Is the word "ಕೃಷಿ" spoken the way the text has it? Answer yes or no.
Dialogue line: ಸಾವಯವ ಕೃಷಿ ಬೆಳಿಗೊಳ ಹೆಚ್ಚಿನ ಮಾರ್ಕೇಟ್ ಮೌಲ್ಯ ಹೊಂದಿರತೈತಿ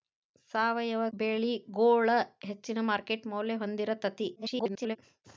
no